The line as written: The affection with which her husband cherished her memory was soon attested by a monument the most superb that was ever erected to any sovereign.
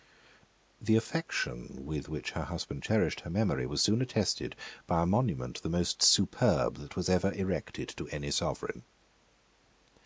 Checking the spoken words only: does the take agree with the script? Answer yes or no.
yes